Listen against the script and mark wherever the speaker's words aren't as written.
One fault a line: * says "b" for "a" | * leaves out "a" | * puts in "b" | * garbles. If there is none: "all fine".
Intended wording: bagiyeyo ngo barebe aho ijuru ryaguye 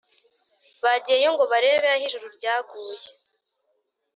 all fine